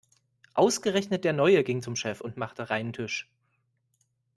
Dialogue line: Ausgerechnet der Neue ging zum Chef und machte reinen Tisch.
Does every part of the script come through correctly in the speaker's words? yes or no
yes